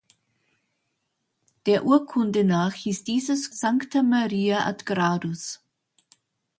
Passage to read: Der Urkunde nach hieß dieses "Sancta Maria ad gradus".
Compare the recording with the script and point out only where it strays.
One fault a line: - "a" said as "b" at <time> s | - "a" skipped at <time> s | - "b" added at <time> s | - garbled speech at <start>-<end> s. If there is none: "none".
none